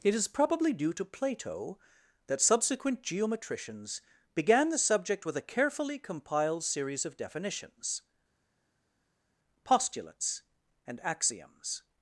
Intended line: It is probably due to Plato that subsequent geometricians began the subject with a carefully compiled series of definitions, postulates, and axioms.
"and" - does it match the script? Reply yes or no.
yes